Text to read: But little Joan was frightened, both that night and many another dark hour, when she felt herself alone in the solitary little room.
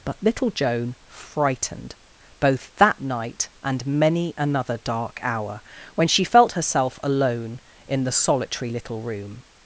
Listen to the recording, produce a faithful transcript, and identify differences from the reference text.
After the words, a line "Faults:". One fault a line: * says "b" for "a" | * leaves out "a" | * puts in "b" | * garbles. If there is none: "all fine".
But little Joan frightened, both that night and many another dark hour, when she felt herself alone in the solitary little room.
Faults:
* leaves out "was"